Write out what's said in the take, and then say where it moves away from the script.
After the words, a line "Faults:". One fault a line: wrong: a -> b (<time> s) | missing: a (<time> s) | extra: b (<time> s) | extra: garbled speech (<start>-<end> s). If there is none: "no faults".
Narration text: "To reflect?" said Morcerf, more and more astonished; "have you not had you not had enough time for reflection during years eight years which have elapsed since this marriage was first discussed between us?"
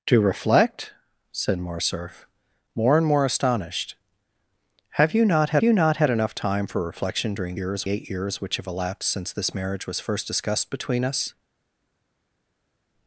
"To reflect?" said Morcerf, more and more astonished; "have you not had you not had enough time for reflection during years eight years which have elapsed since this marriage was first discussed between us?"
Faults:
no faults